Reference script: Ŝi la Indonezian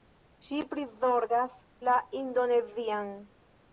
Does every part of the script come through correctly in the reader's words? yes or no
no